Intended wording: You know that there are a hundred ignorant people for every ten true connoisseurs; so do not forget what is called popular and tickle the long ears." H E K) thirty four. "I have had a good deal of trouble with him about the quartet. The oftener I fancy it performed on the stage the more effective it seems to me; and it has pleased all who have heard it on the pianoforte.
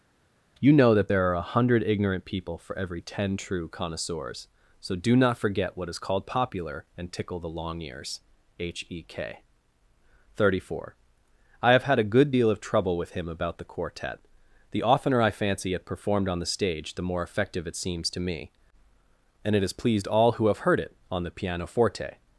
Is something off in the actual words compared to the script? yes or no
no